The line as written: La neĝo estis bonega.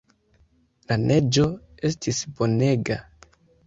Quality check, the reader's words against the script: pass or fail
pass